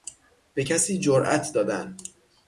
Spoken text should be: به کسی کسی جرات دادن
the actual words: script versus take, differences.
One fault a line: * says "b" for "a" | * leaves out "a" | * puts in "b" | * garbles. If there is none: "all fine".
* leaves out "کسی"